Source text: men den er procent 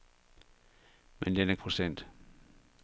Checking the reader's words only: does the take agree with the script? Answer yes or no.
yes